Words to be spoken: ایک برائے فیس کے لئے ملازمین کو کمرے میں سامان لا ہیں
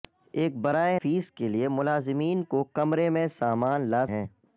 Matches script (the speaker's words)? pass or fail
pass